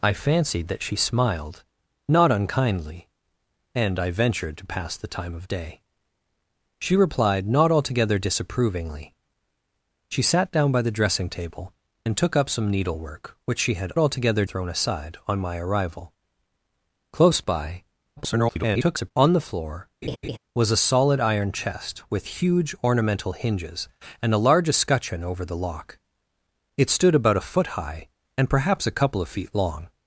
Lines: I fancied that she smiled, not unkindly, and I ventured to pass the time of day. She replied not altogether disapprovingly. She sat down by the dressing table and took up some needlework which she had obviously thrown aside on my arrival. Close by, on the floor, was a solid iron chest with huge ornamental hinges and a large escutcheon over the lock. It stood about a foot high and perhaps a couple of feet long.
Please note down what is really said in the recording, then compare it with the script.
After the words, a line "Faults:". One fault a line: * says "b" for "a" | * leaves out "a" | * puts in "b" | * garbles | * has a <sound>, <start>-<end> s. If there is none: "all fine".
I fancied that she smiled, not unkindly, and I ventured to pass the time of day. She replied not altogether disapprovingly. She sat down by the dressing table and took up some needlework which she had altogether thrown aside on my arrival. Close by, [garbled] on the floor, was a solid iron chest with huge ornamental hinges and a large escutcheon over the lock. It stood about a foot high and perhaps a couple of feet long.
Faults:
* says "altogether" for "obviously"
* garbles
* has a laugh, 20.0-20.4 s